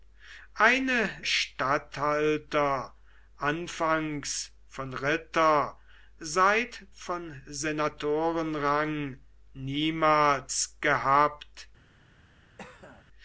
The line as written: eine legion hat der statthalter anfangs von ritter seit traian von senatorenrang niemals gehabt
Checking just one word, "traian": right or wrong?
wrong